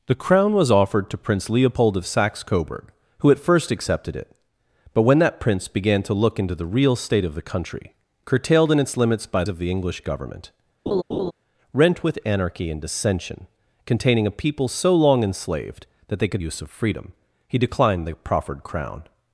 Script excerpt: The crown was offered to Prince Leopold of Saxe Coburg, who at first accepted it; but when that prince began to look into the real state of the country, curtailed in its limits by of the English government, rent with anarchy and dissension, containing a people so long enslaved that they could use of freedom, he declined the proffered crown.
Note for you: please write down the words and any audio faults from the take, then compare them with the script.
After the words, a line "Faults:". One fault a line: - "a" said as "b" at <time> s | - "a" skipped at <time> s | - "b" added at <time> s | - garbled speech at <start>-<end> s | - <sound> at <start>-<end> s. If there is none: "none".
The crown was offered to Prince Leopold of Saxe Coburg, who at first accepted it; but when that prince began to look into the real state of the country, curtailed in its limits by of the English government, rent with anarchy and dissension, containing a people so long enslaved that they could use of freedom, he declined the proffered crown.
Faults:
- laugh at 10.9-11.3 s